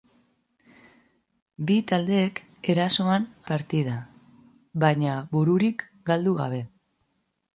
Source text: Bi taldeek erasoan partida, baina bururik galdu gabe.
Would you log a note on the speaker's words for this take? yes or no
no